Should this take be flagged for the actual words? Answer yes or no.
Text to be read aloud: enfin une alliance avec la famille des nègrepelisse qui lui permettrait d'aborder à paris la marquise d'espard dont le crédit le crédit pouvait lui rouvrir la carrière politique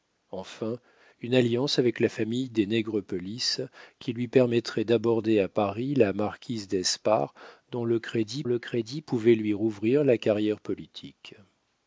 no